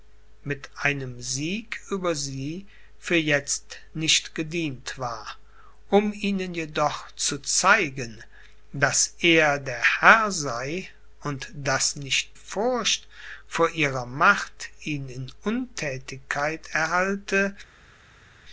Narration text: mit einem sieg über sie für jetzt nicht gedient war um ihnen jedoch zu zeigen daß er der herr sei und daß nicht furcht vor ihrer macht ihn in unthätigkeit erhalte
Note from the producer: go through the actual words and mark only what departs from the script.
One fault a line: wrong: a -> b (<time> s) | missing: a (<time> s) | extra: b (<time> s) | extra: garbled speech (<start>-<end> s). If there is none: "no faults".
no faults